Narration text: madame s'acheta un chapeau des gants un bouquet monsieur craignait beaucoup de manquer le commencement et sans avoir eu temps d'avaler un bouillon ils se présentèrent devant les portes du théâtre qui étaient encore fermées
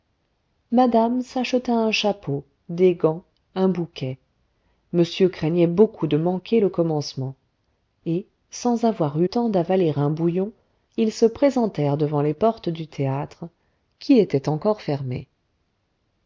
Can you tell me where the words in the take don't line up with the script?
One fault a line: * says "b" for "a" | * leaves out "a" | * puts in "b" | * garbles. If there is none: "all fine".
all fine